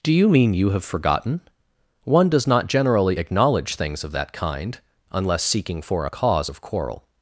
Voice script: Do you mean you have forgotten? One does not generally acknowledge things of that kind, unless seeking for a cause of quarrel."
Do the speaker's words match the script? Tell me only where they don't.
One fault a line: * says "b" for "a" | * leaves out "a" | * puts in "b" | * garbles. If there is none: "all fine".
all fine